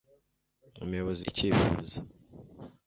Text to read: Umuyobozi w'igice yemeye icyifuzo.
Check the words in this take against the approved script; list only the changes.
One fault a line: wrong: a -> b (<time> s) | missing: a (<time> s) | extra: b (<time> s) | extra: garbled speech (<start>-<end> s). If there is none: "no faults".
missing: w'igice yemeye (1.2 s)